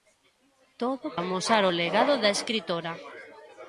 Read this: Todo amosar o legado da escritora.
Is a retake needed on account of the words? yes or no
no